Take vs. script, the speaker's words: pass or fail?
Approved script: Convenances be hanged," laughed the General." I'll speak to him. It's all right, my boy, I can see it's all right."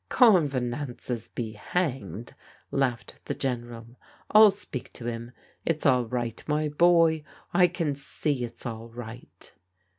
pass